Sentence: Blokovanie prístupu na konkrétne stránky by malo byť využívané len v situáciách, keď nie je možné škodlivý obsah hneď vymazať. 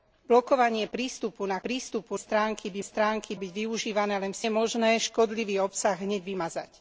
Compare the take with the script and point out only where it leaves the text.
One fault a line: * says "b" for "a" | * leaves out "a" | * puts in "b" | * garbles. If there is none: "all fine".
* says "prístupu" for "konkrétne"
* says "stránky" for "malo"
* leaves out "situáciách keď nie"